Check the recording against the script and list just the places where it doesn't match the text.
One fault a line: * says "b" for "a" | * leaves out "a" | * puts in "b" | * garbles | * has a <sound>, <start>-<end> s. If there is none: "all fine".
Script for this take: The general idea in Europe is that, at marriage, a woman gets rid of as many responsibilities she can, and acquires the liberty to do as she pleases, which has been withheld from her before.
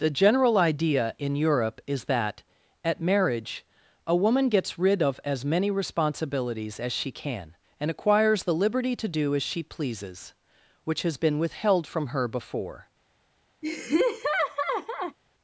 * puts in "as"
* has a laugh, 13.6-15.2 s